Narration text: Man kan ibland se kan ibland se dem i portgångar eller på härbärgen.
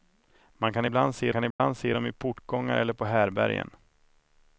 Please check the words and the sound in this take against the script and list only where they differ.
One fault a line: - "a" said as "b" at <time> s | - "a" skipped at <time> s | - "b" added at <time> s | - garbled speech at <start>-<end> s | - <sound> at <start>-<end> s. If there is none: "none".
- dropout at 1.5-1.6 s